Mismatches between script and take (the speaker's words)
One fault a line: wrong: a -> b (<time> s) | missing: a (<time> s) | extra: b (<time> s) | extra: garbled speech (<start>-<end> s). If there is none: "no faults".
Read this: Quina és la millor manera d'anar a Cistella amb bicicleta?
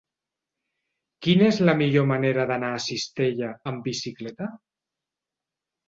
no faults